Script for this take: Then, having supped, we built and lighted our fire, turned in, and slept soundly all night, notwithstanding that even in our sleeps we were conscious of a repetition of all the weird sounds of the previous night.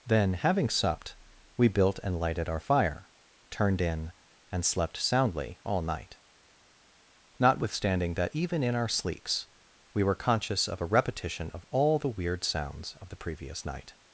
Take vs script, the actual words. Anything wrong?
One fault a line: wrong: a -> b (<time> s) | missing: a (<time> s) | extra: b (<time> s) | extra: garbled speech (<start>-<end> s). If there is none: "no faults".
no faults